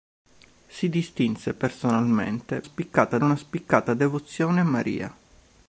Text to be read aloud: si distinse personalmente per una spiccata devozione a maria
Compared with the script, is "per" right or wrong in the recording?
wrong